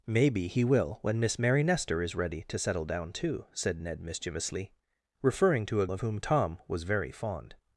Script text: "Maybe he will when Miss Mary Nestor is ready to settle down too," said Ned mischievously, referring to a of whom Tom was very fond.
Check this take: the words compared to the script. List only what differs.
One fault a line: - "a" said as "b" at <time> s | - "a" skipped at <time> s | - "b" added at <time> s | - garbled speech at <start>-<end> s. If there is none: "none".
none